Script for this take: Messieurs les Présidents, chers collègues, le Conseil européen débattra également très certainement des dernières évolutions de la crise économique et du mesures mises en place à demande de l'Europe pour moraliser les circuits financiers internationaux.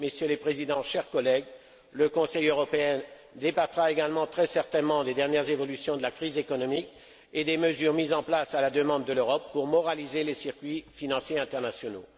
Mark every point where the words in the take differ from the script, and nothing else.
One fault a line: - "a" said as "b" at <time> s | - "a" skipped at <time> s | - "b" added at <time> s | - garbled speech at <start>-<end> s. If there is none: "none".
- "du" said as "des" at 7.4 s
- "la" added at 8.6 s